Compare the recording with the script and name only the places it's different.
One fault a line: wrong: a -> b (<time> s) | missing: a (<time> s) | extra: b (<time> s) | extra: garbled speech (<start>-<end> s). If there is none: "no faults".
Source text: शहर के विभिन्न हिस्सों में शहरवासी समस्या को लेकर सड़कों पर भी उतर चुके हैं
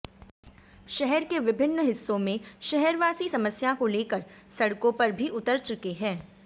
no faults